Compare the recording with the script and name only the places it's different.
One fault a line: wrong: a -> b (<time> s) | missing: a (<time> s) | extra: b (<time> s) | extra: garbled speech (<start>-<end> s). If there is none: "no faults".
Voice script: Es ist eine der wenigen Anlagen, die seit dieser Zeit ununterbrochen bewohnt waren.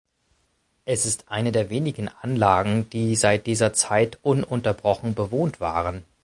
no faults